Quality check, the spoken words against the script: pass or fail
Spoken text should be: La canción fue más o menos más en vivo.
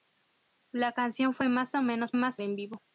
pass